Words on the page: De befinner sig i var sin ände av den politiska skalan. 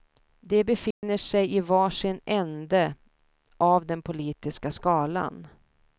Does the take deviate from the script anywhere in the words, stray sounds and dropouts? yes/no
yes